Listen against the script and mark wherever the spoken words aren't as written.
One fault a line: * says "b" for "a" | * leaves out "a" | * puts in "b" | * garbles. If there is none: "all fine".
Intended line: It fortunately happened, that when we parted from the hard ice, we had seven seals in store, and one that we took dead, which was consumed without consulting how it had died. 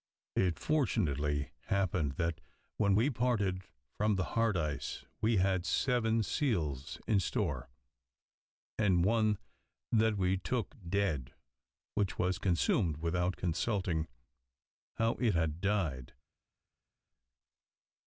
all fine